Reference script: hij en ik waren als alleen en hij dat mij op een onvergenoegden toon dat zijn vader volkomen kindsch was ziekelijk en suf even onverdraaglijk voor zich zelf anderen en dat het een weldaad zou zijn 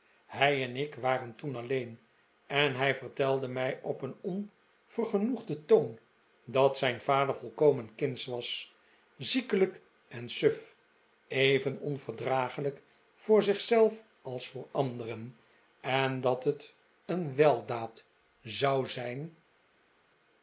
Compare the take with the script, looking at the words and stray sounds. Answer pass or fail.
fail